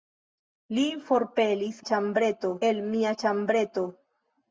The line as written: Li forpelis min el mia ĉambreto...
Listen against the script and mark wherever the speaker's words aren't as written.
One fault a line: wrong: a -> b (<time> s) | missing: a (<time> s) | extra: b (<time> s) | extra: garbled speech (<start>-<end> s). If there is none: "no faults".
wrong: min -> ĉambreto (1.9 s)